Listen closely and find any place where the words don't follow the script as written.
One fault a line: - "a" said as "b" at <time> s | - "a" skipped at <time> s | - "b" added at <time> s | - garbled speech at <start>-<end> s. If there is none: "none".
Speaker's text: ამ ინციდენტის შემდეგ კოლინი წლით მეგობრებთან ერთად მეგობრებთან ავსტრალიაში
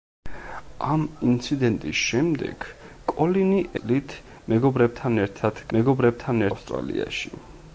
none